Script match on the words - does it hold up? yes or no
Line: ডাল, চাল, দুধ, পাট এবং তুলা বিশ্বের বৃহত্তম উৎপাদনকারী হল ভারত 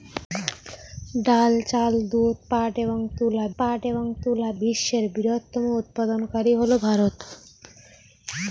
no